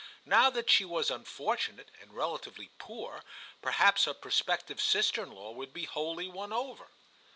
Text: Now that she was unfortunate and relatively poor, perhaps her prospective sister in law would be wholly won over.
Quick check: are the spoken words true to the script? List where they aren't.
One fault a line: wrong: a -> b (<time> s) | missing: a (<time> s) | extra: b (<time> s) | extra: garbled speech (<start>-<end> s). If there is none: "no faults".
no faults